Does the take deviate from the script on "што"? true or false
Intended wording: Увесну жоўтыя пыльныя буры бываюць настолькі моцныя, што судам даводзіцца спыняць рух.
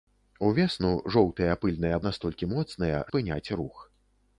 true